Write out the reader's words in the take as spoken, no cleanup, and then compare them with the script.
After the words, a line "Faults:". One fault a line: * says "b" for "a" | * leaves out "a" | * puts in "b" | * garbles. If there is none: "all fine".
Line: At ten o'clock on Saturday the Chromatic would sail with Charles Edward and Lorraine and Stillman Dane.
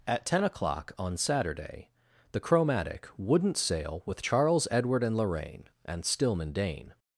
At ten o'clock on Saturday the Chromatic wouldn't sail with Charles Edward and Lorraine and Stillman Dane.
Faults:
* says "wouldn't" for "would"